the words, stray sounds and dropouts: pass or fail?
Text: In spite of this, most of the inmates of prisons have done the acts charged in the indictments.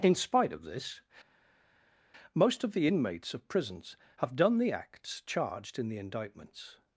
pass